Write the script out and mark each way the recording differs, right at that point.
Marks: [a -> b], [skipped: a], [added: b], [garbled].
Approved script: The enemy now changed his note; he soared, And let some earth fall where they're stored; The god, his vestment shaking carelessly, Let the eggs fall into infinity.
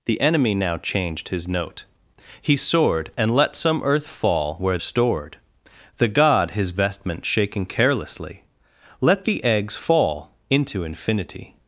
The enemy now changed his note; he soared, And let some earth fall where [skipped: they're] stored; The god, his vestment shaking carelessly, Let the eggs fall into infinity.